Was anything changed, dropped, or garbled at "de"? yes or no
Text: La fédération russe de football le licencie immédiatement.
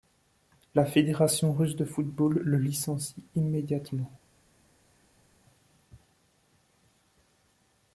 no